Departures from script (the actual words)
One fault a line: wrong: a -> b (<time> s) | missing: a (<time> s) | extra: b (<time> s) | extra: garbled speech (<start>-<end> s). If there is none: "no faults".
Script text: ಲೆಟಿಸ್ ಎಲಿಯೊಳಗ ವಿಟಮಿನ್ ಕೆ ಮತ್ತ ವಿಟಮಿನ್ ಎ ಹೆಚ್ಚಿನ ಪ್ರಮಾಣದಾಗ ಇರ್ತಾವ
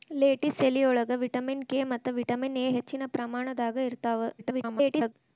extra: garbled speech (4.4-5.1 s)